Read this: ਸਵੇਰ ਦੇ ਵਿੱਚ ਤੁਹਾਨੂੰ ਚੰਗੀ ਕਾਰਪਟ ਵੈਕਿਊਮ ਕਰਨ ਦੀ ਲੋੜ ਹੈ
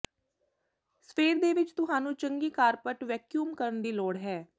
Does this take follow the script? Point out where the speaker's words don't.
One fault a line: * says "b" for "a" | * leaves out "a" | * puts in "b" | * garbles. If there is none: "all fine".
all fine